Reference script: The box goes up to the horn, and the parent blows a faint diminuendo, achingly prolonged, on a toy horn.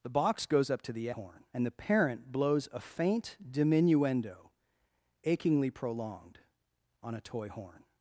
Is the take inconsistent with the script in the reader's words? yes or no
no